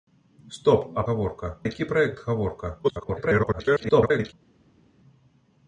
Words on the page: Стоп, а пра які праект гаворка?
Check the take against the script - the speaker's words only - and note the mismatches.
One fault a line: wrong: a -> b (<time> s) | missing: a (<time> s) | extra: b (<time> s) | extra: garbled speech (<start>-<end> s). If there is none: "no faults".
wrong: пра -> гаворка (1.1 s)
extra: garbled speech (2.8-4.3 s)